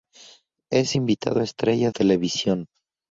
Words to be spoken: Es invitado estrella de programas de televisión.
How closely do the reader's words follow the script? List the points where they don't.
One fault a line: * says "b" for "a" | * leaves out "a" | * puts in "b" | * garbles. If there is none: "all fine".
* leaves out "de programas de"